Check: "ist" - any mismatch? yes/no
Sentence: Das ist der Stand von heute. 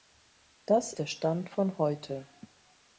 yes